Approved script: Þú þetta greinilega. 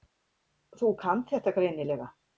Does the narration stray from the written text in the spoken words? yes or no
yes